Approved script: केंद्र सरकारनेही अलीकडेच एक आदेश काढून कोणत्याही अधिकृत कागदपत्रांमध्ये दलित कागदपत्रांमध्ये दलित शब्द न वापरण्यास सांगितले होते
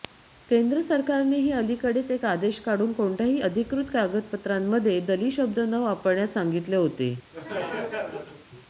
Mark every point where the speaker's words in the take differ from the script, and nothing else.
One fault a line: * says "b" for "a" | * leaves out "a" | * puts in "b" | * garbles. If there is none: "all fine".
* leaves out "कागदपत्रांमध्ये दलित"